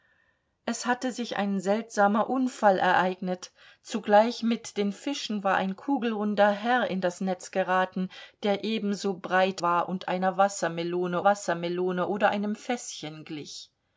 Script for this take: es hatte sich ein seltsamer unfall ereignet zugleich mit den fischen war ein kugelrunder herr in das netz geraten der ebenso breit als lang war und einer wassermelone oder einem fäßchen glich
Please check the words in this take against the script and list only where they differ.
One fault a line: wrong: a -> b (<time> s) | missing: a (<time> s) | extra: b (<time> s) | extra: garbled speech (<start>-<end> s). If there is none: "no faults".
missing: als lang (9.6 s)
extra: wassermelone (11.2 s)